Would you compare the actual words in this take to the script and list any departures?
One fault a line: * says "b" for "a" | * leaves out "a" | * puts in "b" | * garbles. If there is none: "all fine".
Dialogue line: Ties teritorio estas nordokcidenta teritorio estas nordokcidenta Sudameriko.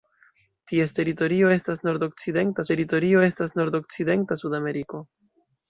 all fine